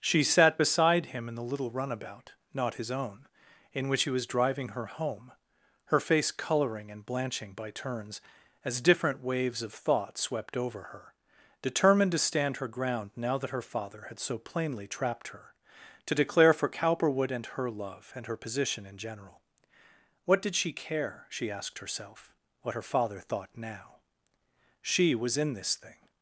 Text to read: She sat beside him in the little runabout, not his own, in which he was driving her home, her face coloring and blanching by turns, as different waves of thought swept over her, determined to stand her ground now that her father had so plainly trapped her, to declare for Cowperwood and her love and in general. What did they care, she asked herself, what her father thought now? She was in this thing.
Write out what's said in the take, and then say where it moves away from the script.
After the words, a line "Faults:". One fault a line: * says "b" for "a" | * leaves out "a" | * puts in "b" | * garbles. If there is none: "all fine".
She sat beside him in the little runabout, not his own, in which he was driving her home, her face coloring and blanching by turns, as different waves of thought swept over her, determined to stand her ground now that her father had so plainly trapped her, to declare for Cowperwood and her love and her position in general. What did she care, she asked herself, what her father thought now? She was in this thing.
Faults:
* puts in "her position"
* says "she" for "they"